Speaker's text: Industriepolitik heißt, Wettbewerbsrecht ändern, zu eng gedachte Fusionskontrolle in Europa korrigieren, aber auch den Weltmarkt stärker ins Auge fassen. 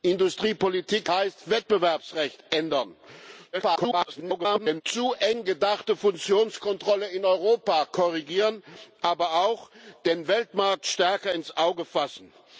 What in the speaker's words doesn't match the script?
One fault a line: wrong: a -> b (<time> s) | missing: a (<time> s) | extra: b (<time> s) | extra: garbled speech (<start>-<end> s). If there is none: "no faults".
extra: garbled speech (3.5-4.8 s)